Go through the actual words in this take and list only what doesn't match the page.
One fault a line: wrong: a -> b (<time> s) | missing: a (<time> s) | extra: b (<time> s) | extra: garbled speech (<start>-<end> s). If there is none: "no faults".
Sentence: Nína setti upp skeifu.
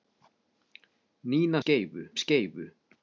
wrong: setti -> skeifu (1.6 s)